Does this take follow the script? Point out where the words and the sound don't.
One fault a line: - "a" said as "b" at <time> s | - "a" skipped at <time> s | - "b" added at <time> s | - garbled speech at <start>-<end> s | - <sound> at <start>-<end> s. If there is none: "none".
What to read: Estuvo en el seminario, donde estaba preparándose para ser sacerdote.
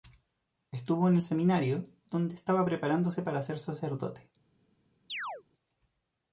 - chirp at 5.1-5.4 s